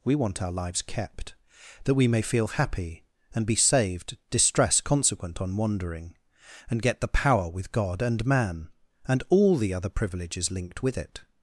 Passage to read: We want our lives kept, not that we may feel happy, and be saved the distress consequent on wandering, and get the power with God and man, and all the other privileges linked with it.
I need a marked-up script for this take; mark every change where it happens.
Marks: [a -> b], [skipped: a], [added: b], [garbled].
We want our lives kept, [skipped: not] that we may feel happy, and be saved [skipped: the] distress consequent on wandering, and get the power with God and man, and all the other privileges linked with it.